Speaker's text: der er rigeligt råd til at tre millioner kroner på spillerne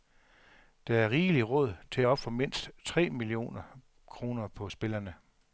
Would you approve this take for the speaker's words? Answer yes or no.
no